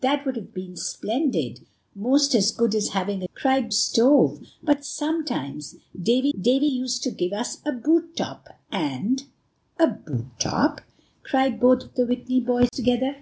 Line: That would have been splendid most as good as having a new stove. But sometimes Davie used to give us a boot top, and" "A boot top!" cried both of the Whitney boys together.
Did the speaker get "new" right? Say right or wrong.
wrong